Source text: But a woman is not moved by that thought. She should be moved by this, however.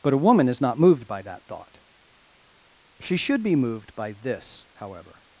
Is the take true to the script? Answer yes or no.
yes